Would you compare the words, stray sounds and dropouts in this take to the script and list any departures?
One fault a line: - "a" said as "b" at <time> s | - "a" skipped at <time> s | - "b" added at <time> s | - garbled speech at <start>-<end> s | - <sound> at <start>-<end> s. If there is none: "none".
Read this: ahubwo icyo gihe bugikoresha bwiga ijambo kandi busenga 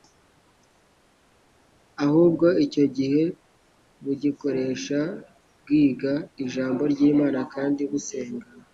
- "ry'imana" added at 6.9 s